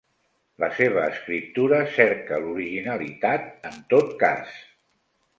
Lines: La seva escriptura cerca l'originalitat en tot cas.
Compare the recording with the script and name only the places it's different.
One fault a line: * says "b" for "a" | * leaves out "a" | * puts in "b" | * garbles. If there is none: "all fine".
all fine